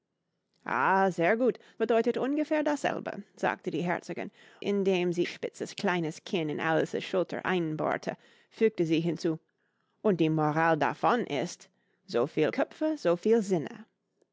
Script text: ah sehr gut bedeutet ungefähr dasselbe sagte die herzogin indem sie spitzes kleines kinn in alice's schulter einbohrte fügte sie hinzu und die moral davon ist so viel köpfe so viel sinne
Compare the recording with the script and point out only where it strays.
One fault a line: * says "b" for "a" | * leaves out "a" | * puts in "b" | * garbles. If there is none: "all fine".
all fine